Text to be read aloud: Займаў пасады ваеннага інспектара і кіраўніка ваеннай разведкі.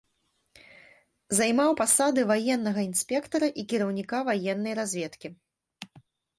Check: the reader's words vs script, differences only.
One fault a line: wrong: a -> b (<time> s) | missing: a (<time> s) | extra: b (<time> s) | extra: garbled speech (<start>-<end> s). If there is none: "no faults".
no faults